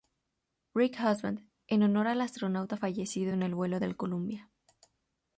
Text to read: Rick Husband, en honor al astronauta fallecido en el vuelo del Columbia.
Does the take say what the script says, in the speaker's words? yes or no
yes